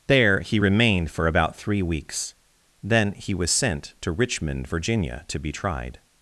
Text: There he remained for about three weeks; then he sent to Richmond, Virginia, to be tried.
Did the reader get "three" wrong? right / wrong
right